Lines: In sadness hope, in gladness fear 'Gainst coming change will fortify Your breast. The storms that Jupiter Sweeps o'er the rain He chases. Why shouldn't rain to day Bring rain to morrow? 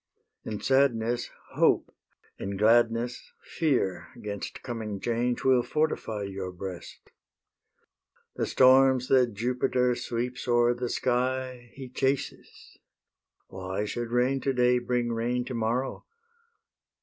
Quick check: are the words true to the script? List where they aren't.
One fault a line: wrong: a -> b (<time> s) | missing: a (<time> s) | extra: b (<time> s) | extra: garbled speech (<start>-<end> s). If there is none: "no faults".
wrong: rain -> sky (10.9 s)
wrong: shouldn't -> should (13.8 s)